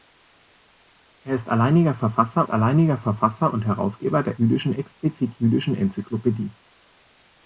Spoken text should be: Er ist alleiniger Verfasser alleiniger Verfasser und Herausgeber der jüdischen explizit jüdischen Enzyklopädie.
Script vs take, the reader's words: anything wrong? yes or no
no